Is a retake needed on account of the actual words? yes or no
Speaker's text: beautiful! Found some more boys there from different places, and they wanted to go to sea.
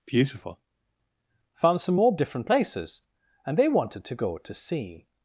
yes